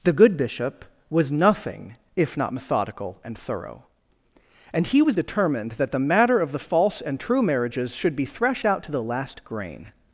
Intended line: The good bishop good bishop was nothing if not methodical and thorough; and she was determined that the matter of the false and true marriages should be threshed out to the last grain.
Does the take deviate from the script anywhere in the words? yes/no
yes